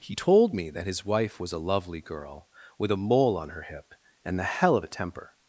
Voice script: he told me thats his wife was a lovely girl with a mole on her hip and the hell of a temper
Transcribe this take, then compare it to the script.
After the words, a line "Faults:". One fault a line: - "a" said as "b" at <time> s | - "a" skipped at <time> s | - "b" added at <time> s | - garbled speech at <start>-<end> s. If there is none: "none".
he told me that his wife was a lovely girl with a mole on her hip and the hell of a temper
Faults:
- "thats" said as "that" at 0.7 s